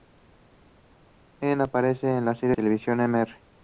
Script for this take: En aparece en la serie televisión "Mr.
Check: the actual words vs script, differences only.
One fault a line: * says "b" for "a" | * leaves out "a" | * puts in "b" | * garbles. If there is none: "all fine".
all fine